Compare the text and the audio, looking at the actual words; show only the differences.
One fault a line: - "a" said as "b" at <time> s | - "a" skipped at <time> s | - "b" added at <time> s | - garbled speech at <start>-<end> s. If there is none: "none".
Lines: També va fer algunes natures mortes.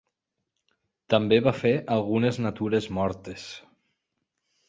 none